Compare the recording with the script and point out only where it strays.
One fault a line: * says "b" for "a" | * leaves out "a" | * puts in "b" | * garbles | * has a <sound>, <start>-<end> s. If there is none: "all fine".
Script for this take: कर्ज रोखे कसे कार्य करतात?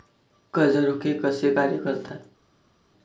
all fine